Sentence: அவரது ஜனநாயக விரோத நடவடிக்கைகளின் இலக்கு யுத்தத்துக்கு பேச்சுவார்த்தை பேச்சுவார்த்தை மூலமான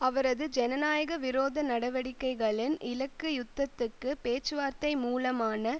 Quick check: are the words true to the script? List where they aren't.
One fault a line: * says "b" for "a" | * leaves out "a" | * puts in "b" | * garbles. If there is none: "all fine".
* leaves out "பேச்சுவார்த்தை"